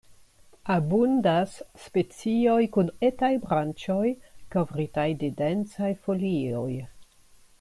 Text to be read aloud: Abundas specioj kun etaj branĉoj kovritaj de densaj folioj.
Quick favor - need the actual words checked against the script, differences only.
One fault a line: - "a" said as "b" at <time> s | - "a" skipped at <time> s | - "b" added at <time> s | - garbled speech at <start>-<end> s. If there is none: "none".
none